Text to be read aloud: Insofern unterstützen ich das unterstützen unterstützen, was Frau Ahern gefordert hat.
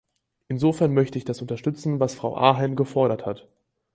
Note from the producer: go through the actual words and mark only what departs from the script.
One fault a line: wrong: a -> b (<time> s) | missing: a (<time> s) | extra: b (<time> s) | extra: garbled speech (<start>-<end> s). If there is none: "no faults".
wrong: unterstützen -> möchte (0.9 s)
missing: unterstützen (2.0 s)